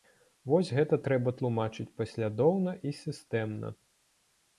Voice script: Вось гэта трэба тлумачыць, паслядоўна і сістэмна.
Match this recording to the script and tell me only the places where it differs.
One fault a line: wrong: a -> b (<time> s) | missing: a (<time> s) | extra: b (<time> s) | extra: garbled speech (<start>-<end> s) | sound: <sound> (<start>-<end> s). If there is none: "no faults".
no faults